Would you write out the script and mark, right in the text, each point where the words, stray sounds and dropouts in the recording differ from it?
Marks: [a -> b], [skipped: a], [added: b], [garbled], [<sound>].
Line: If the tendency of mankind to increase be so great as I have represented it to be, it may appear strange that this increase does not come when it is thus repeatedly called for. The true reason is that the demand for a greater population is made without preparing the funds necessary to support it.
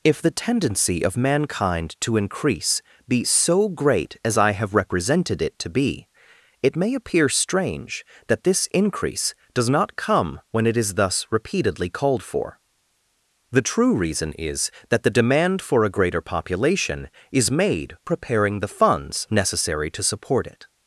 If the tendency of mankind to increase be so great as I have represented it to be, it may appear strange that this increase does not come when it is thus repeatedly called for. The true reason is that the demand for a greater population is made [skipped: without] preparing the funds necessary to support it.